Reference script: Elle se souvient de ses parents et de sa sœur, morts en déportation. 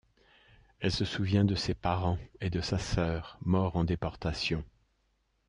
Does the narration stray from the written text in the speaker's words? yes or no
no